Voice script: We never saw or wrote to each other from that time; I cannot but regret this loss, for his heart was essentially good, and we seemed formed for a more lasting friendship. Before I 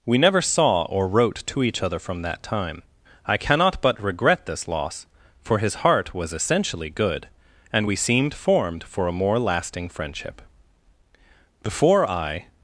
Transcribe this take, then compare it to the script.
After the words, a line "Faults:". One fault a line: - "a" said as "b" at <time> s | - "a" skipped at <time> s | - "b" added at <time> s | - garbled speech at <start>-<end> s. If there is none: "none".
We never saw or wrote to each other from that time; I cannot but regret this loss, for his heart was essentially good, and we seemed formed for a more lasting friendship. Before I
Faults:
none